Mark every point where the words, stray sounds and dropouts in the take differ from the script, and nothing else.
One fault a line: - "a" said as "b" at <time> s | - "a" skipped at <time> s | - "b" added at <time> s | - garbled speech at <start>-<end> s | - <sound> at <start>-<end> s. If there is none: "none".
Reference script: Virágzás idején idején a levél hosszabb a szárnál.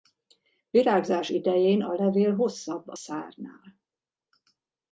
- "idején" skipped at 1.8 s